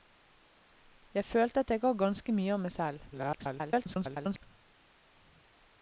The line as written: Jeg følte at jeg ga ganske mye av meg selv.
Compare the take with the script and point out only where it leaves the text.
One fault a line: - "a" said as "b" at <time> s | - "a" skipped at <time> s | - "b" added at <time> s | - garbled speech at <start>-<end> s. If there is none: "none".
- garbled speech at 3.1-4.4 s